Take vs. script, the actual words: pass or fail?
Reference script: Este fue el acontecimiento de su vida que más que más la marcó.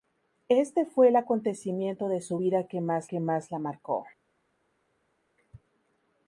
pass